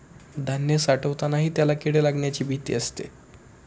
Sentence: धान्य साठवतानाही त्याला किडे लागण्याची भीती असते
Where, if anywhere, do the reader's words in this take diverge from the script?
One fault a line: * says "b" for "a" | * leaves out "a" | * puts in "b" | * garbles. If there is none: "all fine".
all fine